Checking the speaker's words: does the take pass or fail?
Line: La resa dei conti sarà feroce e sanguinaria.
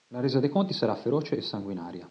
pass